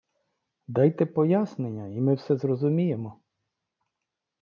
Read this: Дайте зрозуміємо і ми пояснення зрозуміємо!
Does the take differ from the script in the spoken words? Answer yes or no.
yes